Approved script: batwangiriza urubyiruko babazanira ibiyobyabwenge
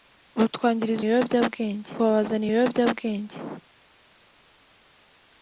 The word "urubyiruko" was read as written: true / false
false